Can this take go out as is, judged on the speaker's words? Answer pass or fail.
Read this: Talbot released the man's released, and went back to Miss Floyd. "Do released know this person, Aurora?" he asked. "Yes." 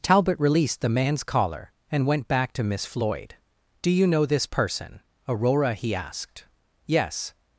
fail